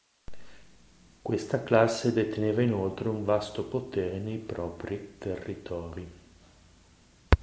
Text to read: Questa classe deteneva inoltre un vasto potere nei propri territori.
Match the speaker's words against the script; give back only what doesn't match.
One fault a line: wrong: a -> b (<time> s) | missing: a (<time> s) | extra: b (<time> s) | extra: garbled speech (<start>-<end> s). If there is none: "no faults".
no faults